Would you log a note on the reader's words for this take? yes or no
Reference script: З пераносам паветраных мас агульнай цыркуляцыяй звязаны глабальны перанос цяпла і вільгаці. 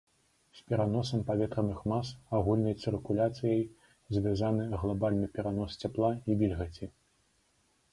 no